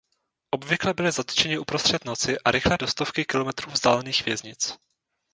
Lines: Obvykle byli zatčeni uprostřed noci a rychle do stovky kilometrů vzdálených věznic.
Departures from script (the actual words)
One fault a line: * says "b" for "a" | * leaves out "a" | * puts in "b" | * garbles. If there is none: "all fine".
all fine